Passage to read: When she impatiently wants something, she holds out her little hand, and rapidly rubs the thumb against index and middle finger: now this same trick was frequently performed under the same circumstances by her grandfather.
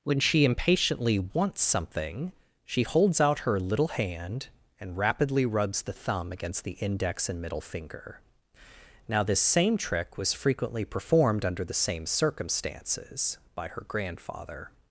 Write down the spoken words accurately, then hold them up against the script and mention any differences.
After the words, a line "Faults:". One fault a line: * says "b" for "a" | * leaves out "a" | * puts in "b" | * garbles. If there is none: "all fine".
When she impatiently wants something, she holds out her little hand, and rapidly rubs the thumb against the index and middle finger: now this same trick was frequently performed under the same circumstances by her grandfather.
Faults:
* puts in "the"